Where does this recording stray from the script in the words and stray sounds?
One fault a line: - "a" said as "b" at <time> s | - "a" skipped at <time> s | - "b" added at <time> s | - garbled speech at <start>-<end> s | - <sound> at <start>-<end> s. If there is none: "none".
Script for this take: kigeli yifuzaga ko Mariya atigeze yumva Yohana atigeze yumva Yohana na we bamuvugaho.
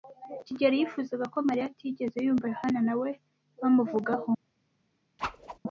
- "atigeze yumva Yohana" skipped at 2.8 s
- whoosh at 5.2-5.6 s